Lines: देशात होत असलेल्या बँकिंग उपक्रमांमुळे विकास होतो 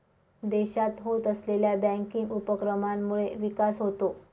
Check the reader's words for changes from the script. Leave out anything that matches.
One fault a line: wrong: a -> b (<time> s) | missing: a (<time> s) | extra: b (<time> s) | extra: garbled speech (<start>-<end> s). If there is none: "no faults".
no faults